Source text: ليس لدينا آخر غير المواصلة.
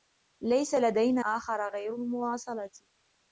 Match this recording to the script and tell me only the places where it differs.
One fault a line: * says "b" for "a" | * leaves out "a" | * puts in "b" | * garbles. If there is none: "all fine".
all fine